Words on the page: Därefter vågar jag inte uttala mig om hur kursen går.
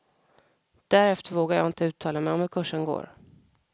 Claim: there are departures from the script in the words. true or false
false